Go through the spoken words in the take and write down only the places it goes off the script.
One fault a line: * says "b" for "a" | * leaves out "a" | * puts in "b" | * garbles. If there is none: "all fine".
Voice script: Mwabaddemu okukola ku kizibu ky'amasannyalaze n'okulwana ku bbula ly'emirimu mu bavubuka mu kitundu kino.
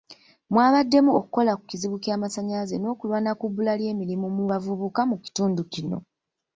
all fine